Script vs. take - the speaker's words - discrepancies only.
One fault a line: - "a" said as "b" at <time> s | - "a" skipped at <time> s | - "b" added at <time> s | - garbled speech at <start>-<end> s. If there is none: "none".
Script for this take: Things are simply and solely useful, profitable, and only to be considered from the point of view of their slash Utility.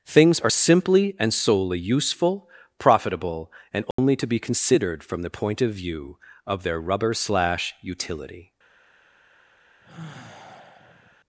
- "rubber" added at 6.8 s